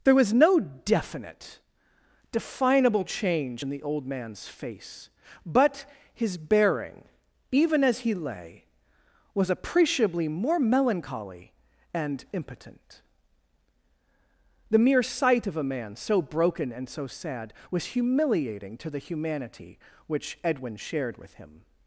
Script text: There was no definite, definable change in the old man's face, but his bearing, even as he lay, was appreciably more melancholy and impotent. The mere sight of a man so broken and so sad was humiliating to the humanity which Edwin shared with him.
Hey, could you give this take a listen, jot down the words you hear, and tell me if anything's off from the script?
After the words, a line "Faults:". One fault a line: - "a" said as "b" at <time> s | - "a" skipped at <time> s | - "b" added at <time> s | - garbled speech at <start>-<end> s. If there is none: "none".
There was no definite, definable change in the old man's face, but his bearing, even as he lay, was appreciably more melancholy and impotent. The mere sight of a man so broken and so sad was humiliating to the humanity which Edwin shared with him.
Faults:
none